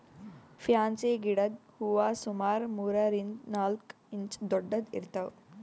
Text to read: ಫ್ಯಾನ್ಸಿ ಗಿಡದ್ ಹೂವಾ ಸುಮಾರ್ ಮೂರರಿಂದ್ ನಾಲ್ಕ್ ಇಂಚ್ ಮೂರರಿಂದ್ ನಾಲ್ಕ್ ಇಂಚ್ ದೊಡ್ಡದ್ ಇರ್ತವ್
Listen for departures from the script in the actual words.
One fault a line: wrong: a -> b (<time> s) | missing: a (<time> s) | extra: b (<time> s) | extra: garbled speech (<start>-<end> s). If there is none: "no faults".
missing: ಮೂರರಿಂದ್ ನಾಲ್ಕ್ ಇಂಚ್ (4.4 s)